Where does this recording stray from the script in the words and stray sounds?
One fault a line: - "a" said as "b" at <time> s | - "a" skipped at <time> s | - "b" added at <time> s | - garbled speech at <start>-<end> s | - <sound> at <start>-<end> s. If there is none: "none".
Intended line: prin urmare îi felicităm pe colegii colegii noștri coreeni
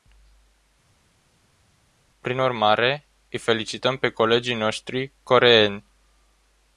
- "colegii" skipped at 4.5 s